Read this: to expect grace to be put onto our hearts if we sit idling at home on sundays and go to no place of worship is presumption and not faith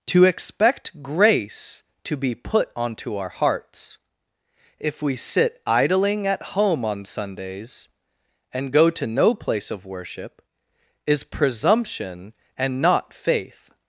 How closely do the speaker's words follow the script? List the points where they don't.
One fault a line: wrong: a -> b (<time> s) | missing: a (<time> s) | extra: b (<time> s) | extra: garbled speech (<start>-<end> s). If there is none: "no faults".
no faults